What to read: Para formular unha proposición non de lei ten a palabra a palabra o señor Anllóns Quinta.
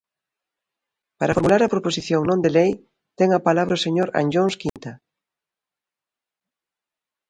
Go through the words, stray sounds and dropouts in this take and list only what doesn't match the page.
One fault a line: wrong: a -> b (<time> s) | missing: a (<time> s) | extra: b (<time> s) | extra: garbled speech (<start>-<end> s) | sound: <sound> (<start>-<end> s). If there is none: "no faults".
wrong: unha -> a (1.6 s)
missing: a palabra (3.8 s)
sound: dropout (4.7-4.8 s)